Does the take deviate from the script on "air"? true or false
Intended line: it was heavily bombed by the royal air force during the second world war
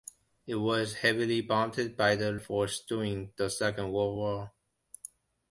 true